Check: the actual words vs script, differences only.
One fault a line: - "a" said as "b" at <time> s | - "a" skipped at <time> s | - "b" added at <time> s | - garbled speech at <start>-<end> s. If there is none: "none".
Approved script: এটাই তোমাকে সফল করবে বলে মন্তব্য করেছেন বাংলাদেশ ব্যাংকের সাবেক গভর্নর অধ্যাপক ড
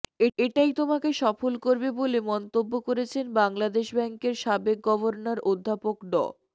none